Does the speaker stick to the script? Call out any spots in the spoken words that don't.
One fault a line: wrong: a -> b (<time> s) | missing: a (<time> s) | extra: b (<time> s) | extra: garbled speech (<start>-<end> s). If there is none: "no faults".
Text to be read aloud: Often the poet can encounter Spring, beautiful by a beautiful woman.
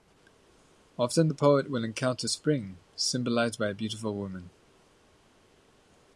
wrong: can -> will (1.7 s)
wrong: beautiful -> symbolized (3.0 s)